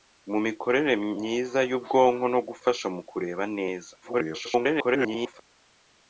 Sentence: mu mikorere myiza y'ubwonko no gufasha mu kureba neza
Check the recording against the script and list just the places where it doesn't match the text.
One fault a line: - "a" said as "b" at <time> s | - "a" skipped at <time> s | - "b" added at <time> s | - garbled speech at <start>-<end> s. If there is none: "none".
- garbled speech at 4.0-5.4 s